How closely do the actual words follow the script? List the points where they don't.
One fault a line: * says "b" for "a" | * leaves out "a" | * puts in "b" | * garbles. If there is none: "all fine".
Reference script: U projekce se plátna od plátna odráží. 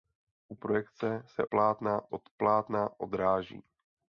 all fine